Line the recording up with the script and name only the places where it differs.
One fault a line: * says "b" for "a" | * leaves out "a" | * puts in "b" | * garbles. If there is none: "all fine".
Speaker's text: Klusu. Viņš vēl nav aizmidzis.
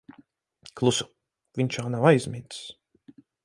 all fine